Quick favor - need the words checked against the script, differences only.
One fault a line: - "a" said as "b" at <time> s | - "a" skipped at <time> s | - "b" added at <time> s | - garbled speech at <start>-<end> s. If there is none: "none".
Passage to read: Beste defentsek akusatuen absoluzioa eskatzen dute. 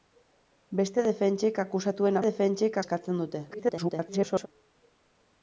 - "absoluzioa" said as "defentsek" at 2.3 s
- garbled speech at 3.5-4.5 s